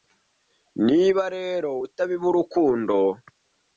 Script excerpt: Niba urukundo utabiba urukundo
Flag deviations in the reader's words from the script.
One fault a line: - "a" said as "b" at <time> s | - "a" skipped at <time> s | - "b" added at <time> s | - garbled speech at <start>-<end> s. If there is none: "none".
- "urukundo" said as "rero" at 1.4 s